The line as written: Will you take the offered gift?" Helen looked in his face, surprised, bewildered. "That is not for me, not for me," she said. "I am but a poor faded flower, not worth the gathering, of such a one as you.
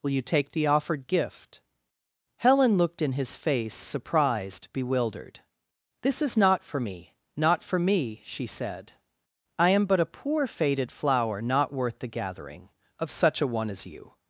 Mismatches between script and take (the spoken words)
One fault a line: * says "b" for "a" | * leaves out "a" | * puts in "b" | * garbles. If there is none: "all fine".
* says "This" for "That"